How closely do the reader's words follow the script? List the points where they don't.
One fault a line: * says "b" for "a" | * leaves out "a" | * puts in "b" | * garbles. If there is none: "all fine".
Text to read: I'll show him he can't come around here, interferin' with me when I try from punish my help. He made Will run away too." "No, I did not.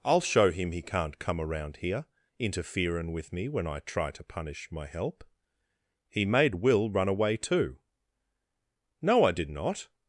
* says "to" for "from"